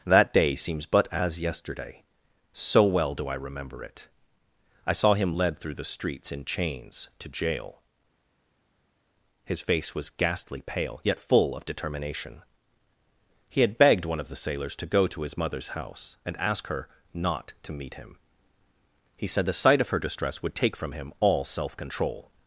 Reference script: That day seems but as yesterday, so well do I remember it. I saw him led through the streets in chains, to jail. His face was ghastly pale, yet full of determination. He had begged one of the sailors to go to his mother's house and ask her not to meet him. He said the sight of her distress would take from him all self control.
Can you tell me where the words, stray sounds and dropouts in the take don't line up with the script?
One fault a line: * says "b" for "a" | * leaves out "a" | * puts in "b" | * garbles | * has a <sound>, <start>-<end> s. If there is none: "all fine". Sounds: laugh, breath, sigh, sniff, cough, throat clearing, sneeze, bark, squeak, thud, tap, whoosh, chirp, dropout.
all fine